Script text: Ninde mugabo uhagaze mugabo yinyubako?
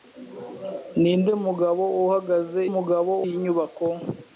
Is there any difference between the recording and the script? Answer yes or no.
no